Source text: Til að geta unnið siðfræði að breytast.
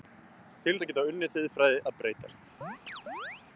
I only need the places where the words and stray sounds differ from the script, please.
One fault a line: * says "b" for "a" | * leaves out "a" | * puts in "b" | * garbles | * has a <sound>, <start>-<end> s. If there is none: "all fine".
* has a chirp, 2.6-3.4 s